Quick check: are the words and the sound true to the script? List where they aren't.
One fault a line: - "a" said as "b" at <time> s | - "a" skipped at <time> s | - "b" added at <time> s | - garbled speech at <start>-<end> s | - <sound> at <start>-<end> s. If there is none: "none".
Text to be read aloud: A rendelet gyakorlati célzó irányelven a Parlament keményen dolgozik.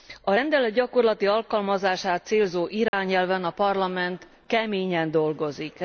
- "alkalmazását" added at 1.3 s
- dropout at 2.9-2.9 s